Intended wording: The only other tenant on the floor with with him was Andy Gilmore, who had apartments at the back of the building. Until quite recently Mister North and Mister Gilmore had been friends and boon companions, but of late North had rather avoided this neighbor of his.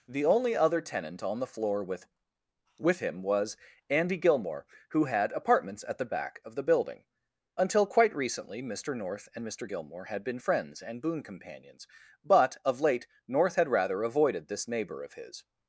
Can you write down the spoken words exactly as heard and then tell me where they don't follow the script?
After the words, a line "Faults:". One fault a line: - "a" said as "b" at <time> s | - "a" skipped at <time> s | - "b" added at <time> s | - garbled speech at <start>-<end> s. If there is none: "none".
The only other tenant on the floor with with him was Andy Gilmore, who had apartments at the back of the building. Until quite recently Mister North and Mister Gilmore had been friends and boon companions, but of late North had rather avoided this neighbor of his.
Faults:
none